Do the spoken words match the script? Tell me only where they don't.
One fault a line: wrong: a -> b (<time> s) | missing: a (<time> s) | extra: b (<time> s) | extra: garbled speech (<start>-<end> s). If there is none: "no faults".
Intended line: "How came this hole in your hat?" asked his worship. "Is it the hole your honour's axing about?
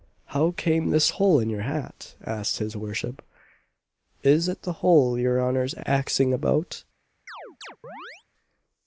no faults